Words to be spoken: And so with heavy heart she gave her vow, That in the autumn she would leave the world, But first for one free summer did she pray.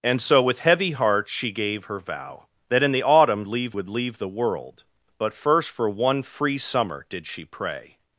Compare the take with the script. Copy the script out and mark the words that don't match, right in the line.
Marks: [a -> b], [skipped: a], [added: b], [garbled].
And so with heavy heart she gave her vow, That in the autumn [she -> leave] would leave the world, But first for one free summer did she pray.